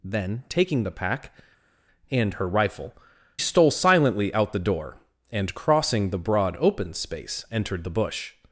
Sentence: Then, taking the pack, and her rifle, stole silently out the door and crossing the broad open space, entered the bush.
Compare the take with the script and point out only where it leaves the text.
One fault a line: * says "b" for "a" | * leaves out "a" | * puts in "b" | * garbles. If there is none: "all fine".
all fine